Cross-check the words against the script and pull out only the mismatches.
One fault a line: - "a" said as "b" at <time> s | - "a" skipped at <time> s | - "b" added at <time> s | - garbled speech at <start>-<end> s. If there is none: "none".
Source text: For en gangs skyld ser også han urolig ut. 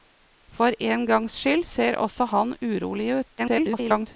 - garbled speech at 3.4-4.1 s